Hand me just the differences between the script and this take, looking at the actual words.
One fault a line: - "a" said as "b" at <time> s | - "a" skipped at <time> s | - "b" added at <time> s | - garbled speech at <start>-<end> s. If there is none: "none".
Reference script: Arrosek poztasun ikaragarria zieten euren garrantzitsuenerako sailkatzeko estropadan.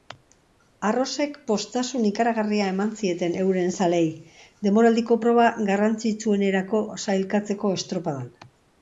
- "eman" added at 2.7 s
- "zaleei denboraldiko proba" added at 3.9 s